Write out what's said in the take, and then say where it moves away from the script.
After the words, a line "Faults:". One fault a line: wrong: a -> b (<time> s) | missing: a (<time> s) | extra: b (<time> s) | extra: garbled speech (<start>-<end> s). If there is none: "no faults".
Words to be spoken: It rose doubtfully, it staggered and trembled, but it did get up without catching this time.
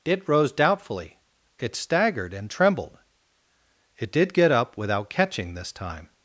It rose doubtfully, it staggered and trembled, it did get up without catching this time.
Faults:
missing: but (3.0 s)